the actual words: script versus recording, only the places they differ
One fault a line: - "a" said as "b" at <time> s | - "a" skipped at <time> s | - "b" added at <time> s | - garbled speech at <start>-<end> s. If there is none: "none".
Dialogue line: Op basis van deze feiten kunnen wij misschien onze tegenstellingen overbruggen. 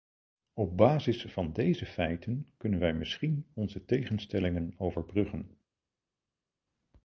none